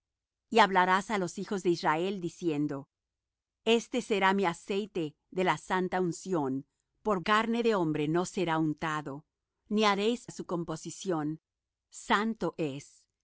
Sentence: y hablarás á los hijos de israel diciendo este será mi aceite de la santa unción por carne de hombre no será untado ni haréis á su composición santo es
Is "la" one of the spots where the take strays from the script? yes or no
no